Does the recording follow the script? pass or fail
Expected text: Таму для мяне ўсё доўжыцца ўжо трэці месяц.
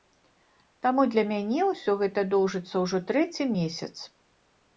fail